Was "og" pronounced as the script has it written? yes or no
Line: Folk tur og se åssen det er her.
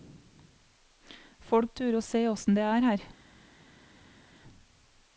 yes